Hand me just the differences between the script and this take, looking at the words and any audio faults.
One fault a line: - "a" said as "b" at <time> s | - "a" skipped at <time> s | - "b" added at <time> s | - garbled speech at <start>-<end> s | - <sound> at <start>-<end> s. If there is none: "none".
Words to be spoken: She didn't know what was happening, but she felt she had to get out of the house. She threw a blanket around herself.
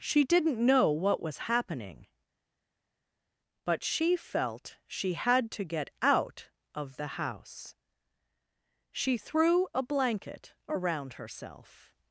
none